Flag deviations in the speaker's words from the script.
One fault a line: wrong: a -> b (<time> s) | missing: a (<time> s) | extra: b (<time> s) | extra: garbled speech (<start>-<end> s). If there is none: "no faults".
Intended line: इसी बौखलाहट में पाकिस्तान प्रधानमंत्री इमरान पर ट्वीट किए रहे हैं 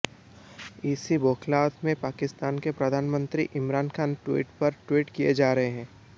extra: के (2.6 s)
extra: खान ट्वीट (4.0 s)
extra: जा (5.3 s)